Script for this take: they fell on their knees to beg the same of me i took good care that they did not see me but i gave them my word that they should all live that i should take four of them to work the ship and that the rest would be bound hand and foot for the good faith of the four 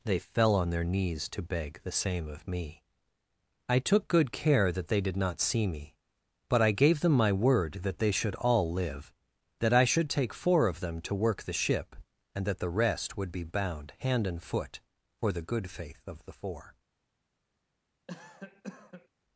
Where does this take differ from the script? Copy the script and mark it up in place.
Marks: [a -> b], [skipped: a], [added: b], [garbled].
they fell on their knees to beg the same of me i took good care that they did not see me but i gave them my word that they should all live that i should take four of them to work the ship and that the rest would be bound hand and foot for the good faith of the four